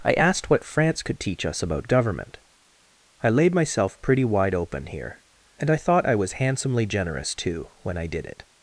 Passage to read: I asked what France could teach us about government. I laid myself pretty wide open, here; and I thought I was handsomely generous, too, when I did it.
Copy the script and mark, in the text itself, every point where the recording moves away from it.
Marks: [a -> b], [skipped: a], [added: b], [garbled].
I asked what France could teach us about government. I laid myself pretty wide open, here; and I thought I was handsomely generous, too, when I did it.